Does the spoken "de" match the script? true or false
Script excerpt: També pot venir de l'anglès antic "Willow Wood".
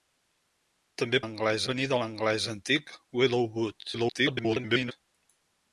true